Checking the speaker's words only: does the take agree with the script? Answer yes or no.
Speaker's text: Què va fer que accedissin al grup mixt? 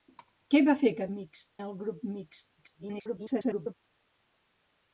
no